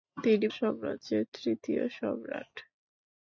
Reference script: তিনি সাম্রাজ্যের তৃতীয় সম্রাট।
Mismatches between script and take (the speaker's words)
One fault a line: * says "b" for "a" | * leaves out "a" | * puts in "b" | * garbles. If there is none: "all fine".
all fine